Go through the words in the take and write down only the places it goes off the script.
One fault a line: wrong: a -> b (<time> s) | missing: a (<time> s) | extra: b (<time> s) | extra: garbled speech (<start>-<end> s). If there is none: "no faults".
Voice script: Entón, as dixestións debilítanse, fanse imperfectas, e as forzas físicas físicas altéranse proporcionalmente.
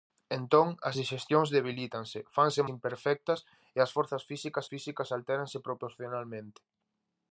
no faults